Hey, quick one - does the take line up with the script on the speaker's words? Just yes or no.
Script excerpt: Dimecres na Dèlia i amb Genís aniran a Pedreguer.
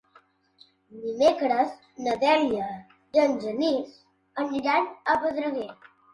no